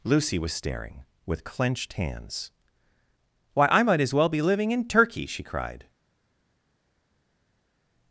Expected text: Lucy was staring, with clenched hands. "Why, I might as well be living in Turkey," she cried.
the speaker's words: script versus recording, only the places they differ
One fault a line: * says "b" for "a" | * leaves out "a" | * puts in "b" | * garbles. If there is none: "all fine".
all fine